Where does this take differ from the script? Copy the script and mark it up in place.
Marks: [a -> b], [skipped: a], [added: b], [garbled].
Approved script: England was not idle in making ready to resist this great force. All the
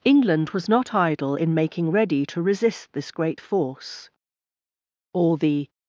England was not idle in making ready to resist this great force. All the